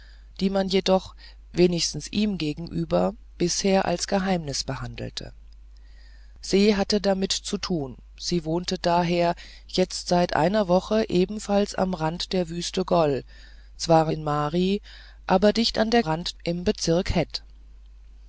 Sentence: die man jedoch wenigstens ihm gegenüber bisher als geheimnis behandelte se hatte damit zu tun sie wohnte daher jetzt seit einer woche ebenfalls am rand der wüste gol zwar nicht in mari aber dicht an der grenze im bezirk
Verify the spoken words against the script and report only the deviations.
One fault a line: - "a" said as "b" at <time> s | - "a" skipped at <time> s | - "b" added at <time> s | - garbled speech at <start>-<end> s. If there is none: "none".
- "nicht" skipped at 14.1 s
- "grenze" said as "rand" at 16.0 s